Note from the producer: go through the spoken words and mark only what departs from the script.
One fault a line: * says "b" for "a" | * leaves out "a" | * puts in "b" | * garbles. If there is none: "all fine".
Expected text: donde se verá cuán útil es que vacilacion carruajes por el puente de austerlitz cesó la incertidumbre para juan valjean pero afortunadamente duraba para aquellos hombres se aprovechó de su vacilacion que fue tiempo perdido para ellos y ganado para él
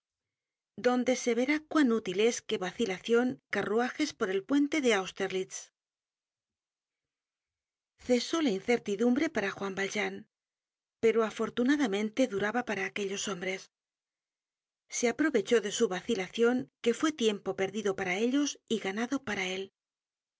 all fine